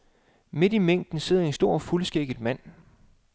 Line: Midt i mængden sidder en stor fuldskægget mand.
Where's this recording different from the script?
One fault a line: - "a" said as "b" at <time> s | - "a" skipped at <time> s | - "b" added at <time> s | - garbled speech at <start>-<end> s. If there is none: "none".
none